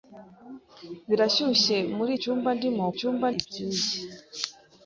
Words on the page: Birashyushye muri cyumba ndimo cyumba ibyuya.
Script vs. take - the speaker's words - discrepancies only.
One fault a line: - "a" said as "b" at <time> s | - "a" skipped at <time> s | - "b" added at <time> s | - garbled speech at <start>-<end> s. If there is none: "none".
none